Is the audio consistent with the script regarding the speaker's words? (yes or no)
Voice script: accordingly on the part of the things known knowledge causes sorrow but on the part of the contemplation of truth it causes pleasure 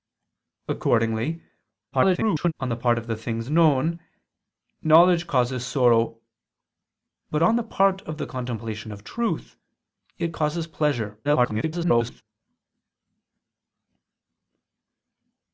no